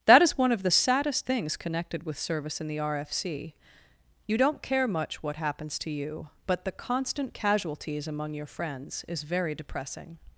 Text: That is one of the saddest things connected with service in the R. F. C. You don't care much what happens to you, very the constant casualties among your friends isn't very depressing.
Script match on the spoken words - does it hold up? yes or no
no